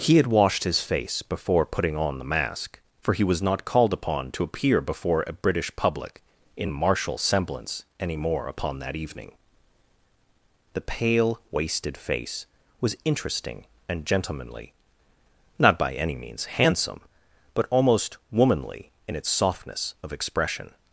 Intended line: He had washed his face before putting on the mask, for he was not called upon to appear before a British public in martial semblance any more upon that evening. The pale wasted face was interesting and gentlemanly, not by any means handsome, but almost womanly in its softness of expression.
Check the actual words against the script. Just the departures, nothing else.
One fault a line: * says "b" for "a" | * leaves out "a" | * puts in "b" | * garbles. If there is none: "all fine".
all fine